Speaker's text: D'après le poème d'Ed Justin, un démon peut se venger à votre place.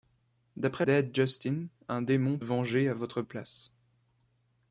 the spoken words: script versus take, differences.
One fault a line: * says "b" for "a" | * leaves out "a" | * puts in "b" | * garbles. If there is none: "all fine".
* leaves out "le poème"
* leaves out "peut se"